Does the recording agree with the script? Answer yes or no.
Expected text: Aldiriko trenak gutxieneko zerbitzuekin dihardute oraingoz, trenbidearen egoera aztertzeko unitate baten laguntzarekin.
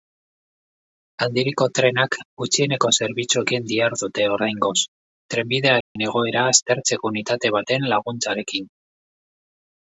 yes